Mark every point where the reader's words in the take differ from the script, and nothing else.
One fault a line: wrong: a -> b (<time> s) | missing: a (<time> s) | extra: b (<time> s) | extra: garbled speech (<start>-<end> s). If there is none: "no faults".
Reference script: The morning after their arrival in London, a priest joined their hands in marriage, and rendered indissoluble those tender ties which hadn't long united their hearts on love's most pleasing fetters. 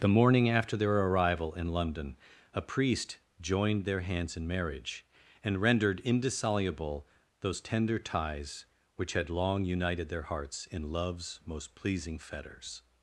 wrong: hadn't -> had (9.1 s)
wrong: on -> in (10.7 s)